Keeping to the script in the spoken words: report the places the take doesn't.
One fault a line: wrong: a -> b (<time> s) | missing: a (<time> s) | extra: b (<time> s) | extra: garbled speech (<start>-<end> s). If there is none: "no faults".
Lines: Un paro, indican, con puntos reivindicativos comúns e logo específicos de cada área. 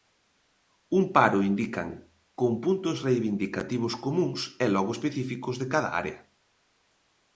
no faults